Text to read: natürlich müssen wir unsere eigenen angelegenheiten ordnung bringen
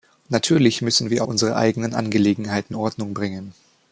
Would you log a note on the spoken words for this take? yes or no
no